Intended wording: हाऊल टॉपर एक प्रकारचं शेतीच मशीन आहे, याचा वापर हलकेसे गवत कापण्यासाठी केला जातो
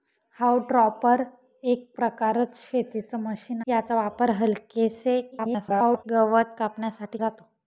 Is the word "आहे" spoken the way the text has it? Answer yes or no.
no